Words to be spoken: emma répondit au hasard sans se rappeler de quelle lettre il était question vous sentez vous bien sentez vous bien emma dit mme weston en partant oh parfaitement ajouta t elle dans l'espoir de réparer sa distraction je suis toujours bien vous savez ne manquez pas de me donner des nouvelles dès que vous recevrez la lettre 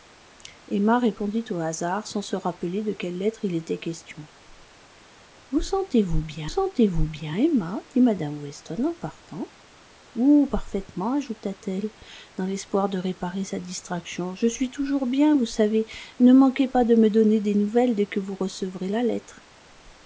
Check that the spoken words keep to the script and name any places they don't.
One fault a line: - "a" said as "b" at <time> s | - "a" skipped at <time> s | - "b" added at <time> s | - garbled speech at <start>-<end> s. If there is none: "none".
none